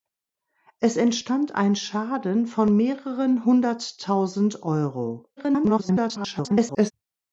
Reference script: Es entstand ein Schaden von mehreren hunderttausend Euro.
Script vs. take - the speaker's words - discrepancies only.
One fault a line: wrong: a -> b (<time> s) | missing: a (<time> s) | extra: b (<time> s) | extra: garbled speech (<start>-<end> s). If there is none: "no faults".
extra: garbled speech (5.4-6.9 s)